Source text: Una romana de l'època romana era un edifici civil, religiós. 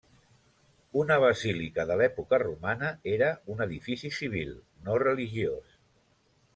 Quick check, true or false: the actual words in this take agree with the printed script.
false